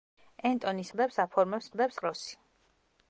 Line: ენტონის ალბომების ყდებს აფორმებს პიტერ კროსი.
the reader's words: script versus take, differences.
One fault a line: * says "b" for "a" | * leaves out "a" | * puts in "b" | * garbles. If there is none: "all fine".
* leaves out "ალბომების"
* says "ყდებს" for "პიტერ"